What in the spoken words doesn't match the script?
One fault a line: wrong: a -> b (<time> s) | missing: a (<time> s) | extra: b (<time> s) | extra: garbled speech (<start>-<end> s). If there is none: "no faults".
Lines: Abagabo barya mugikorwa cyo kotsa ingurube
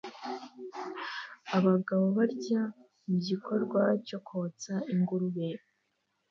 no faults